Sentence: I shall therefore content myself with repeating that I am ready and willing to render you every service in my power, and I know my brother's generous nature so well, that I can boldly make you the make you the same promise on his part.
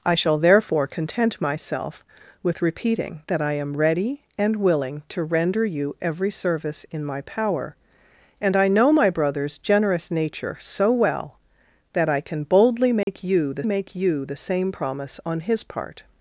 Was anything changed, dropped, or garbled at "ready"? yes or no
no